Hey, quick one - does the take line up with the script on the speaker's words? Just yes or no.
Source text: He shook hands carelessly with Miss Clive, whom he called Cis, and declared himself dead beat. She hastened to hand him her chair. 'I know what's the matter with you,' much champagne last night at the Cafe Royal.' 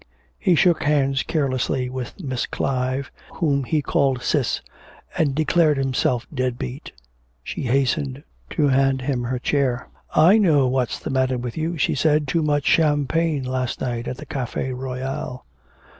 no